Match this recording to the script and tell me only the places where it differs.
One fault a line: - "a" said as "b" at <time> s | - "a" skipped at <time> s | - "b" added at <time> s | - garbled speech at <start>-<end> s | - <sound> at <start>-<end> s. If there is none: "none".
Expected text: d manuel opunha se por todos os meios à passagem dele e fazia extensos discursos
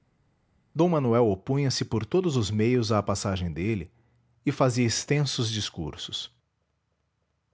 none